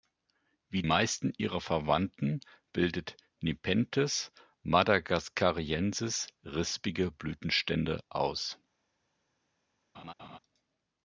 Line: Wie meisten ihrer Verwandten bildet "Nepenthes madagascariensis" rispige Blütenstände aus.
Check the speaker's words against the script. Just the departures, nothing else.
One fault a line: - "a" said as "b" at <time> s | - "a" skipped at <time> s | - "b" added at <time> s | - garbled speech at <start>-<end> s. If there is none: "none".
none